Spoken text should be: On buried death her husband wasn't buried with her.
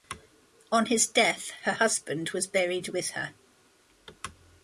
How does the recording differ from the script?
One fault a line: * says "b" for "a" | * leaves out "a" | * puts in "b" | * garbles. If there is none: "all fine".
* says "his" for "buried"
* says "was" for "wasn't"